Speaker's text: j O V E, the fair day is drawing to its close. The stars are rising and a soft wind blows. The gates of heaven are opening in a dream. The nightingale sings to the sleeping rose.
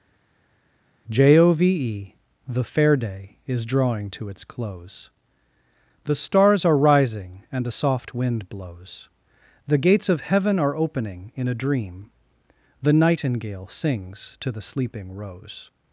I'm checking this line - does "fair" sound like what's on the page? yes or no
yes